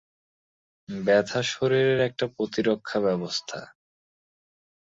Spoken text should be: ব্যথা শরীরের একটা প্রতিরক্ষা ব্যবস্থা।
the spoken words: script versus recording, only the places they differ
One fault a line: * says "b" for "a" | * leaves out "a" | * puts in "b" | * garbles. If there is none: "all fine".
all fine